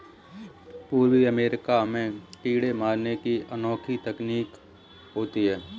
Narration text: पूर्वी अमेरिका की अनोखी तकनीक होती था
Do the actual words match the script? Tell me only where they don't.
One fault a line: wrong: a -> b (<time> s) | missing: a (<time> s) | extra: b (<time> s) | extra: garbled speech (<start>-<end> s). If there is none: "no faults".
extra: में कीड़े मारने (1.8 s)
wrong: था -> है (5.4 s)